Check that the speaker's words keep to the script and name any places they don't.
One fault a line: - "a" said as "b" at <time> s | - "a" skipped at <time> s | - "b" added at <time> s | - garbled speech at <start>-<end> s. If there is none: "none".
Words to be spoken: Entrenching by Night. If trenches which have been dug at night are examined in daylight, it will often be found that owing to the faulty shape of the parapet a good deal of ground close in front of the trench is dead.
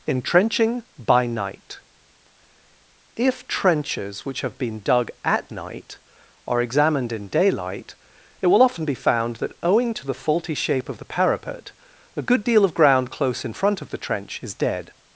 none